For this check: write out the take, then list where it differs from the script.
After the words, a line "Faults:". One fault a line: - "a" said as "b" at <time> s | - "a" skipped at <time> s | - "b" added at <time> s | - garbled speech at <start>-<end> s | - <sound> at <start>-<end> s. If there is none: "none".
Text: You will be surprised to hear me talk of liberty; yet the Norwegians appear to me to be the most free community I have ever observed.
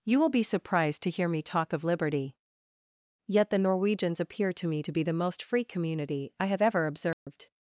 You will be surprised to hear me talk of liberty; yet the Norwegians appear to me to be the most free community I have ever observed.
Faults:
- dropout at 7.1-7.3 s